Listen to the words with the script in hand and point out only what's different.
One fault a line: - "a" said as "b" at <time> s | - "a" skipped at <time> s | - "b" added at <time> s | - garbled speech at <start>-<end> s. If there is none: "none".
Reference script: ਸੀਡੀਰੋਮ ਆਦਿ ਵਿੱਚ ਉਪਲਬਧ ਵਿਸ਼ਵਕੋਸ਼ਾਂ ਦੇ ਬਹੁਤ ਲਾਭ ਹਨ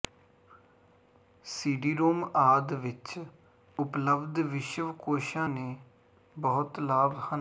none